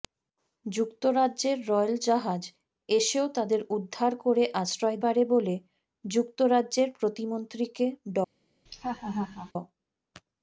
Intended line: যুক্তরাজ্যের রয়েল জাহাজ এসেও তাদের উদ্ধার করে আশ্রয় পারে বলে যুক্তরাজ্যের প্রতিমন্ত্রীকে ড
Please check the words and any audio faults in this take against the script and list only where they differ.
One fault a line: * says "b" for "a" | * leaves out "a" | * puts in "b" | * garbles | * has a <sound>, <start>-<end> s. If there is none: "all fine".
* has a laugh, 8.7-9.5 s